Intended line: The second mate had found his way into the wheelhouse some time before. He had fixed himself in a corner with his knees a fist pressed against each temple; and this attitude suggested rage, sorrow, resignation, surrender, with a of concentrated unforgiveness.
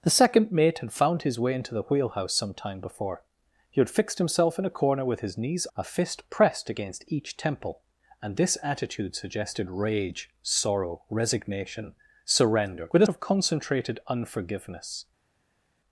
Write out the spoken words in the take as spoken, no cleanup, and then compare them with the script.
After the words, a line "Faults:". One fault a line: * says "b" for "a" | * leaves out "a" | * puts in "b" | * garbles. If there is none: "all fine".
The second mate had found his way into the wheelhouse some time before. He had fixed himself in a corner with his knees a fist pressed against each temple; and this attitude suggested rage, sorrow, resignation, surrender, with a of concentrated unforgiveness.
Faults:
all fine